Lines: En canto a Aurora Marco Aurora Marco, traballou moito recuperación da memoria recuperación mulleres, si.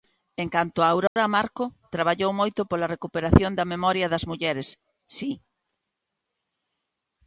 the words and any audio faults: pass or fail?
fail